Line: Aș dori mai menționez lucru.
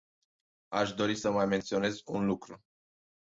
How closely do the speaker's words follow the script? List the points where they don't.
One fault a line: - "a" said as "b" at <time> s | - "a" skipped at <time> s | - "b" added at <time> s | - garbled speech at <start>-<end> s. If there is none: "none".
- "să" added at 1.1 s
- "un" added at 2.0 s